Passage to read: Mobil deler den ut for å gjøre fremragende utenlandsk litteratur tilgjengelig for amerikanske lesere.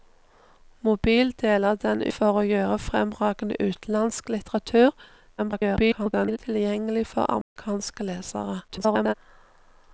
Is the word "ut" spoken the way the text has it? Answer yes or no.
no